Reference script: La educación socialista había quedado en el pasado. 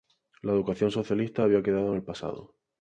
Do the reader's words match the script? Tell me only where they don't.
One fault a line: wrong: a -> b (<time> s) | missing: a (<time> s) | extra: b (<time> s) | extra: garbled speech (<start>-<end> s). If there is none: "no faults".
no faults